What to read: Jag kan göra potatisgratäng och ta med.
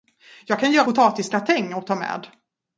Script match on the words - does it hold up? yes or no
yes